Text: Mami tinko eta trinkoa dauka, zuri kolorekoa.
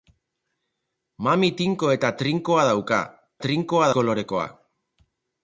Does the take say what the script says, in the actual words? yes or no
no